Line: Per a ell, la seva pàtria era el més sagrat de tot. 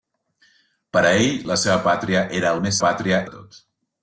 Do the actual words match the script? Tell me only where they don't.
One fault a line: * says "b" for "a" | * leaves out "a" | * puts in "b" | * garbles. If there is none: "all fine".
* says "pàtria" for "sagrat"